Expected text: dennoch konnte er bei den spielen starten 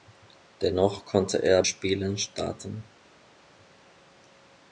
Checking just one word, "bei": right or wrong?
wrong